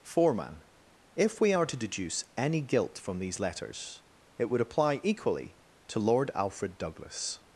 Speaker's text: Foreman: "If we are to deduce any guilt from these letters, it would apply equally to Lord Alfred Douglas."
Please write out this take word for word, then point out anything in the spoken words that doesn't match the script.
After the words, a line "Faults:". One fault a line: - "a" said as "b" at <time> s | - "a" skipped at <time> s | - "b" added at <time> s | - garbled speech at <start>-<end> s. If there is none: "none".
Foreman: "If we are to deduce any guilt from these letters, it would apply equally to Lord Alfred Douglas."
Faults:
none